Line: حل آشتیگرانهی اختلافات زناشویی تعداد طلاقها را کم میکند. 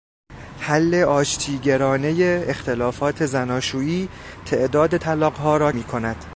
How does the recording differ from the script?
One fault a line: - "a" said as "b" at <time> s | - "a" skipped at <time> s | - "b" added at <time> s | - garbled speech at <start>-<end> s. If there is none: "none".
- "کم" skipped at 5.7 s